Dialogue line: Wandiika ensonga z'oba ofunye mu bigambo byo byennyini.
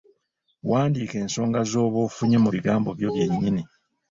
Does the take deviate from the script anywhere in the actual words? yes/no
no